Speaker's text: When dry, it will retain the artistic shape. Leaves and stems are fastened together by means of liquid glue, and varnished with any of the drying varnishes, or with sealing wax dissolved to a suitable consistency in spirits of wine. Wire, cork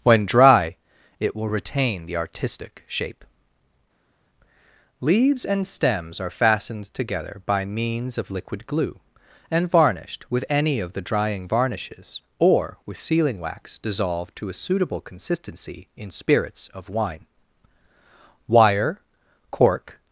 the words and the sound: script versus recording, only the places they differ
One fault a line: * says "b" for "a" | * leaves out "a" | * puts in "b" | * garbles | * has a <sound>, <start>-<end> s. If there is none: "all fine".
all fine